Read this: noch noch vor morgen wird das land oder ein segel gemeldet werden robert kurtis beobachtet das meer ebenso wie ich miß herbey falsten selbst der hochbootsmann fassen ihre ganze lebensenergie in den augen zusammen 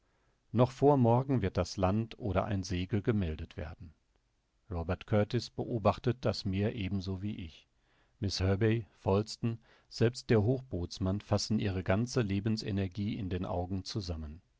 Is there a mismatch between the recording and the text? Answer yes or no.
yes